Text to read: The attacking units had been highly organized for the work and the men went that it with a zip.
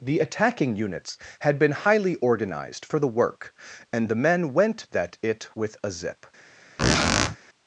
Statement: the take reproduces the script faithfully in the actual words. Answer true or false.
true